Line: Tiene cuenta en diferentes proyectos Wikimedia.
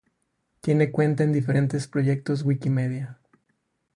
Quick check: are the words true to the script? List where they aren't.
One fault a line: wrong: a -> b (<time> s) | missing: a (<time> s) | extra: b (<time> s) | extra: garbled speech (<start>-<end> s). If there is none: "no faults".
no faults